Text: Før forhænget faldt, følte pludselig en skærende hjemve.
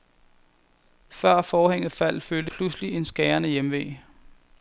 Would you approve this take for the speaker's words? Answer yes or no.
yes